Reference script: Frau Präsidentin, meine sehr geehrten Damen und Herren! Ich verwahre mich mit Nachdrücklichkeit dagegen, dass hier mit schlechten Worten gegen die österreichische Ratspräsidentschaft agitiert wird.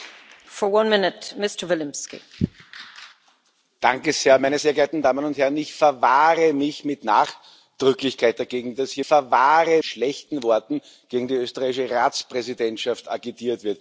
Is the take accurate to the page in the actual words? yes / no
no